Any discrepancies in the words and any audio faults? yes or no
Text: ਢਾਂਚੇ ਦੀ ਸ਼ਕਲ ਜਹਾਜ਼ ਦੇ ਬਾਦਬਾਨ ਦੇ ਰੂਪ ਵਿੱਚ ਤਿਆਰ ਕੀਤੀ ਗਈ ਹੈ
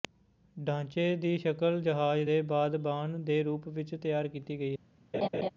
yes